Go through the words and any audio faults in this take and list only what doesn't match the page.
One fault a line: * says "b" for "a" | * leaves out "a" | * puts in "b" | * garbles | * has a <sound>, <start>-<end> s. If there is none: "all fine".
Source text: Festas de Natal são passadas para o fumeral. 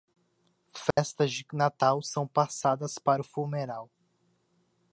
* has a dropout, 0.9-1.0 s